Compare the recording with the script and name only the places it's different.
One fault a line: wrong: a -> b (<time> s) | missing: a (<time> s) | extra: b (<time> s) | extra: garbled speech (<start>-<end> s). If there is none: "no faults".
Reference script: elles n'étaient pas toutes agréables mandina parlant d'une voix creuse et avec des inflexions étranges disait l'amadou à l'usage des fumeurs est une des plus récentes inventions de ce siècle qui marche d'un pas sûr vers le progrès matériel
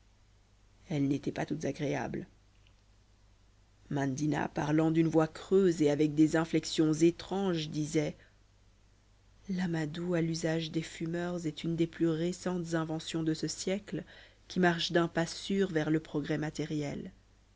no faults